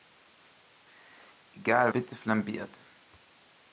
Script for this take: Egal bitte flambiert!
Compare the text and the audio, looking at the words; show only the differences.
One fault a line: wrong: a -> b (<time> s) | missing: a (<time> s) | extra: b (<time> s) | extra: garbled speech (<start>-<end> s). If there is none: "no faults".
no faults